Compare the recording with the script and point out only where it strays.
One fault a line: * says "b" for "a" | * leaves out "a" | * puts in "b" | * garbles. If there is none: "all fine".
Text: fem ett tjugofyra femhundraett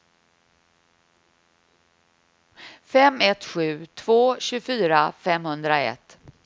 * puts in "sju två"